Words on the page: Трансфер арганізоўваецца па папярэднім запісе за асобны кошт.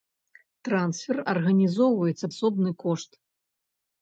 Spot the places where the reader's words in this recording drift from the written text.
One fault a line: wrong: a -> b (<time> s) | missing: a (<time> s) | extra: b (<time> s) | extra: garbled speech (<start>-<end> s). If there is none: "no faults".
missing: папярэднім запісе за (2.3 s)